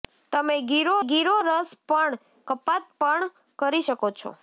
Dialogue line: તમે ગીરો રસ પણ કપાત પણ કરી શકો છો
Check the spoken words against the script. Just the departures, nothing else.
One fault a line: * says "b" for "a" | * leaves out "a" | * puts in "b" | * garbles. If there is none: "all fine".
* puts in "ગીરો"